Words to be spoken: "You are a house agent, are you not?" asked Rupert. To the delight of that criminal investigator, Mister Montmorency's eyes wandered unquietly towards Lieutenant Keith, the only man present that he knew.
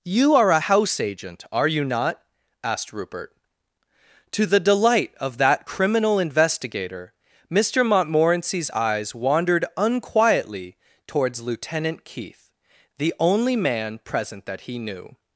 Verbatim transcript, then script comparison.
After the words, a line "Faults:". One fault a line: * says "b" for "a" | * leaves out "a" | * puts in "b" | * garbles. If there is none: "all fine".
"You are a house agent, are you not?" asked Rupert. To the delight of that criminal investigator, Mister Montmorency's eyes wandered unquietly towards Lieutenant Keith, the only man present that he knew.
Faults:
all fine